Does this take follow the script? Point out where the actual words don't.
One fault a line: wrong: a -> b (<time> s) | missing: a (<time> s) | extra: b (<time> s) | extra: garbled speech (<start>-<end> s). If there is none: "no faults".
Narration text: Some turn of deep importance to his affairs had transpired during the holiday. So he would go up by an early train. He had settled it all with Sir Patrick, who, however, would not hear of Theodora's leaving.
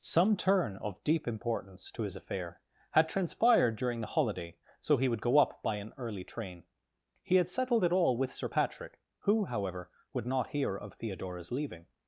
wrong: affairs -> affair (2.1 s)